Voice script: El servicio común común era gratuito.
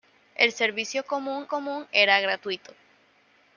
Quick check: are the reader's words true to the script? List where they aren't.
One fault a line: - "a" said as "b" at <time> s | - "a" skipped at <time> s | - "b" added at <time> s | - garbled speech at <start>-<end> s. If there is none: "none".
none